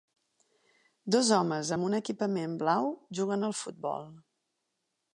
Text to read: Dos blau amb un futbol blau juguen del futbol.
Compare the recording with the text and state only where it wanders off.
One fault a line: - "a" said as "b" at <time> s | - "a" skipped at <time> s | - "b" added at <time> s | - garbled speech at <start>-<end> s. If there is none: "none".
- "blau" said as "homes" at 1.4 s
- "futbol" said as "equipament" at 2.0 s
- "del" said as "al" at 3.5 s